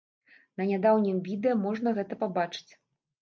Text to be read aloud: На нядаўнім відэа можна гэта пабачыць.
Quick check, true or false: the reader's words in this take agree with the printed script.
true